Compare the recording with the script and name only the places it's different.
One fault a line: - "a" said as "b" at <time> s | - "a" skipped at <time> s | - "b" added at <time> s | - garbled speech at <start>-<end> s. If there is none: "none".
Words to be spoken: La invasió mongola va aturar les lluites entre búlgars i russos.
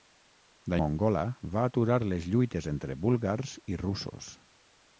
- "invasió" skipped at 0.8 s